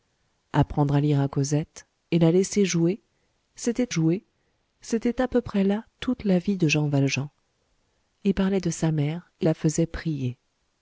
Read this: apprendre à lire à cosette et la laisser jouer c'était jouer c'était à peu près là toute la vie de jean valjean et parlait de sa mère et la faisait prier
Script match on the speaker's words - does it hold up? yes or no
yes